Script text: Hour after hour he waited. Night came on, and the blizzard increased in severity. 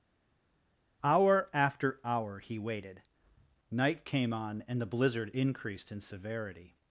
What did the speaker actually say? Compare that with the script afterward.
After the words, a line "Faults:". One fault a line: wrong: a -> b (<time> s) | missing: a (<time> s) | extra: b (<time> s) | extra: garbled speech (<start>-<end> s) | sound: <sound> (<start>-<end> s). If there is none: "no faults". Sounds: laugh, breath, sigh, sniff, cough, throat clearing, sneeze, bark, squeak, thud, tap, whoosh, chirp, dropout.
Hour after hour he waited. Night came on, and the blizzard increased in severity.
Faults:
no faults